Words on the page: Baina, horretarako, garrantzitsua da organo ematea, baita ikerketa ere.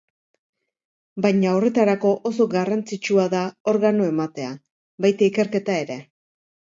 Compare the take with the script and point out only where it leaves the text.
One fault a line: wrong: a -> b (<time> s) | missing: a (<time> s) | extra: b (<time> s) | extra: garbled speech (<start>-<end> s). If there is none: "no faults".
extra: oso (2.3 s)